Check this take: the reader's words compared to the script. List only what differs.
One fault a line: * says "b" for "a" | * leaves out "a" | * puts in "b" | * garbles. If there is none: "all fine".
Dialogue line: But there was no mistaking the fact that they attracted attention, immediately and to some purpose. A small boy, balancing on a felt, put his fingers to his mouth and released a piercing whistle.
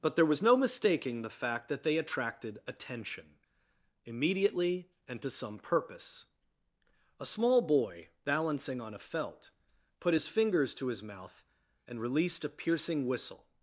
all fine